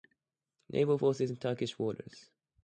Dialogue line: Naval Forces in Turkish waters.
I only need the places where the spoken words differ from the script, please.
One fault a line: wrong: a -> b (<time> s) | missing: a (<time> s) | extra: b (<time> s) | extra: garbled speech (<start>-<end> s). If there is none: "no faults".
no faults